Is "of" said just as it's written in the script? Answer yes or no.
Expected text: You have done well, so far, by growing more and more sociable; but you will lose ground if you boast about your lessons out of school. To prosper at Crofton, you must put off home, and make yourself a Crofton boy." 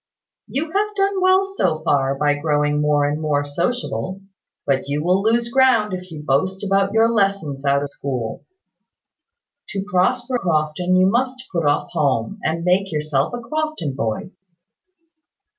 no